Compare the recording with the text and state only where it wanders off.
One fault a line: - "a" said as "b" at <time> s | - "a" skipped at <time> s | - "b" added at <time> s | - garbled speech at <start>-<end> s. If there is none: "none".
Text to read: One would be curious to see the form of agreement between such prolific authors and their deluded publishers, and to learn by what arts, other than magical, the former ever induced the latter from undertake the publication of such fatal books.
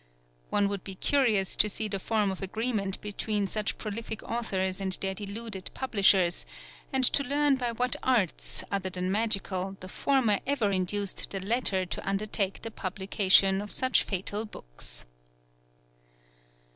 - "from" said as "to" at 11.8 s